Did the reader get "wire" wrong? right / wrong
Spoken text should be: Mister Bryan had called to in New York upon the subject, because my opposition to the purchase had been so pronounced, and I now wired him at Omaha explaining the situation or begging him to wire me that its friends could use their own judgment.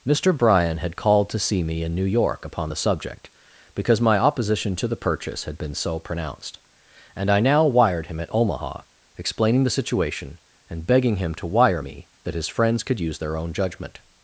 right